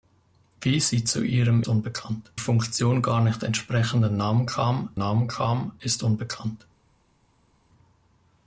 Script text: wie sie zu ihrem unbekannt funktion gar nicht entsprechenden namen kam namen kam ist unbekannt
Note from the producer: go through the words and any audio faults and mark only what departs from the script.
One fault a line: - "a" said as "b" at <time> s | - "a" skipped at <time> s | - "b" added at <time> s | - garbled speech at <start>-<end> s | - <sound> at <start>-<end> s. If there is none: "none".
none